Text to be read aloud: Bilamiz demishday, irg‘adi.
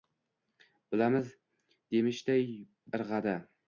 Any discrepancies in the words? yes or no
no